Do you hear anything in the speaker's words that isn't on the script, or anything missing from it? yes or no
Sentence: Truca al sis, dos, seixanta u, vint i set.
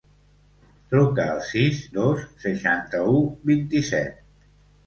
no